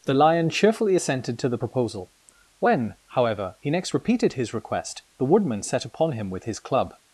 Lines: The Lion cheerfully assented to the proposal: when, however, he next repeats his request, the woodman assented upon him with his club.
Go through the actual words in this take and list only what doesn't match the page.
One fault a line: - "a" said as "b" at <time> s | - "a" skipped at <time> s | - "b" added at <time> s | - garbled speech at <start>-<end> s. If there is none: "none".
- "repeats" said as "repeated" at 3.9 s
- "assented" said as "set" at 5.6 s